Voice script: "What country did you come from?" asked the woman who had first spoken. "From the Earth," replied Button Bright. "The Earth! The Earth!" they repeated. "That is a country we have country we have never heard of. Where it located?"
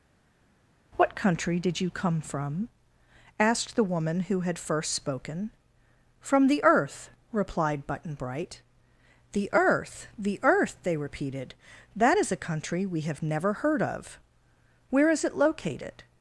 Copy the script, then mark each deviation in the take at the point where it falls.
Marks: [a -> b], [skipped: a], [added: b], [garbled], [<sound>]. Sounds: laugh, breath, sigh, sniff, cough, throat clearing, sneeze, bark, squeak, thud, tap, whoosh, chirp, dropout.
"What country did you come from?" asked the woman who had first spoken. "From the Earth," replied Button Bright. "The Earth! The Earth!" they repeated. "That is a country we have [skipped: country we have] never heard of. Where [added: is] it located?"